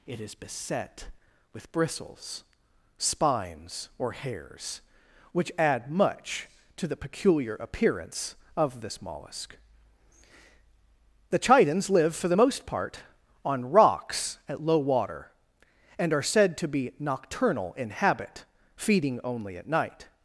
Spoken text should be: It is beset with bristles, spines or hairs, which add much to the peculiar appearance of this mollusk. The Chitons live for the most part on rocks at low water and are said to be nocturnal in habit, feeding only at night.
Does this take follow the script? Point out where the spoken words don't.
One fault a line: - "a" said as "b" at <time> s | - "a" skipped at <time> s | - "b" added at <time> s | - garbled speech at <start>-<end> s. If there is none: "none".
none